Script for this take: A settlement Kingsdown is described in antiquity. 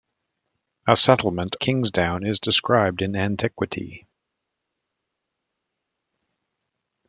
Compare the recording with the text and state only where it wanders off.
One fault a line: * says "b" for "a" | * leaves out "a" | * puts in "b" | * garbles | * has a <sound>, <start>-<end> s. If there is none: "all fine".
all fine